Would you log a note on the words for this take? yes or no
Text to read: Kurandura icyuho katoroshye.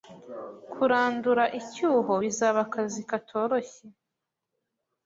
yes